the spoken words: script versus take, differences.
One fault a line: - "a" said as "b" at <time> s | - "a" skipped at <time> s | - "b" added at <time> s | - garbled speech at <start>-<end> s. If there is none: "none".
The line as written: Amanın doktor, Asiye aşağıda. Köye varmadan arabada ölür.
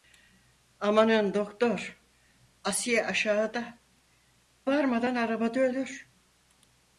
- "Köye" skipped at 3.8 s